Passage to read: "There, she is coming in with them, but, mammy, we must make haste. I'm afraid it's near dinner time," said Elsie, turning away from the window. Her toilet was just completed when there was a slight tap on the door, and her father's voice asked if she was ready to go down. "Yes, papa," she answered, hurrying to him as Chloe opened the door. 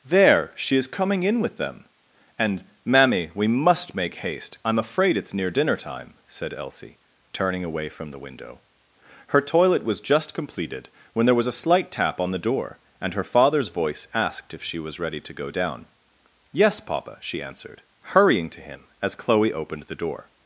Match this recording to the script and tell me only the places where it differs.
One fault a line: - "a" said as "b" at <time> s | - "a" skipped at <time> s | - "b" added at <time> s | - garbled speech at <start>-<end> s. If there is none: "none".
- "but" said as "and" at 2.4 s